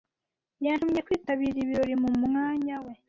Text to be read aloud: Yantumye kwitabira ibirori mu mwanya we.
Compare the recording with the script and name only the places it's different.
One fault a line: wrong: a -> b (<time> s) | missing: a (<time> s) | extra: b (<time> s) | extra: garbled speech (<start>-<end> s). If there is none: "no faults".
no faults